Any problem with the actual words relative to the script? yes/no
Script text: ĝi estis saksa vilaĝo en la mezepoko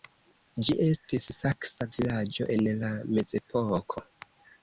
no